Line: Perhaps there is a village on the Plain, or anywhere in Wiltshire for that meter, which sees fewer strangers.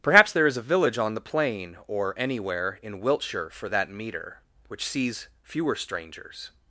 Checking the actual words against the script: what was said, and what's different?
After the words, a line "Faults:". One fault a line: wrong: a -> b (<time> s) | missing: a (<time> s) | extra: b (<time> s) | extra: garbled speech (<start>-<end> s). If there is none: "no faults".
Perhaps there is a village on the Plain, or anywhere in Wiltshire for that meter, which sees fewer strangers.
Faults:
no faults